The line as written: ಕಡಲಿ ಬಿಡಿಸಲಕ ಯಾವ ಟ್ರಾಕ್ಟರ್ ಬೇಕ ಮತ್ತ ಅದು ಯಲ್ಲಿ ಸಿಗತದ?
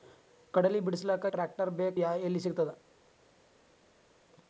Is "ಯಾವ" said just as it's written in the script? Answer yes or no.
no